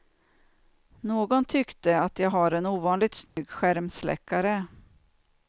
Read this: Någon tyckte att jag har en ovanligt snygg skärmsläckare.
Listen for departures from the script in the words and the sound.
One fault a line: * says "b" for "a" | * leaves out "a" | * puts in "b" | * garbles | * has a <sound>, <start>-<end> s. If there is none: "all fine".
* has a dropout, 3.3-3.4 s